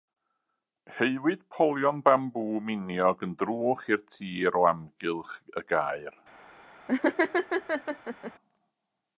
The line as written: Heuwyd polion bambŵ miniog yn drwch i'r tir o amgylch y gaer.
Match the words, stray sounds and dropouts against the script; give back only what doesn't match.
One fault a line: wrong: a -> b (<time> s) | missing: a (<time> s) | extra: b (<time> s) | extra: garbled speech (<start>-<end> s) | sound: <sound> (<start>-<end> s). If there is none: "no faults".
sound: laugh (6.9-8.3 s)